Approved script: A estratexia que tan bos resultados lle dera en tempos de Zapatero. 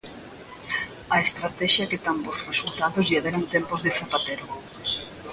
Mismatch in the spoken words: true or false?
false